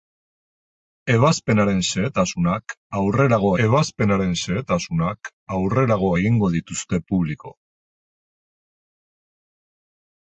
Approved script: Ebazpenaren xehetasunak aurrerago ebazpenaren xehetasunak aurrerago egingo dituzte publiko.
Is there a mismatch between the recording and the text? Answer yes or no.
no